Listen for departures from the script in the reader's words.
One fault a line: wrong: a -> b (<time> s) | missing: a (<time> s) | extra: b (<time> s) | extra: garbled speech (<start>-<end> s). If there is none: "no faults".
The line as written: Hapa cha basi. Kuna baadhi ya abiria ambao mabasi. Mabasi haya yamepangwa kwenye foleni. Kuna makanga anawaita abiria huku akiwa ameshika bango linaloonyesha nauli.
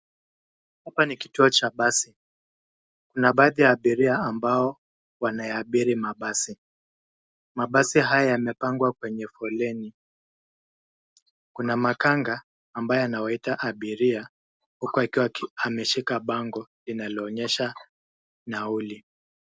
extra: ni kituo (1.1 s)
extra: wanayaabiri (5.2 s)
extra: ambaye (12.7 s)